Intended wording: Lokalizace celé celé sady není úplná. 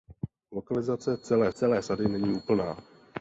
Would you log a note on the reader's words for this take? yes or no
no